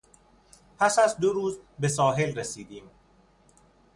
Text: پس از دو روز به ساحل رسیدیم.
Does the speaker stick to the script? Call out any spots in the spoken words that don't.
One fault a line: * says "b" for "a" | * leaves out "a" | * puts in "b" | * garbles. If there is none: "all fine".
all fine